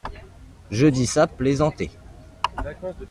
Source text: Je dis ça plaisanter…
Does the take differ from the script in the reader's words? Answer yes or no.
no